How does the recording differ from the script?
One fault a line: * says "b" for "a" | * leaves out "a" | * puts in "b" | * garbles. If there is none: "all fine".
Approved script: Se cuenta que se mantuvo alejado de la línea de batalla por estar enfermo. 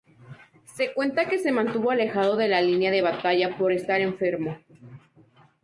all fine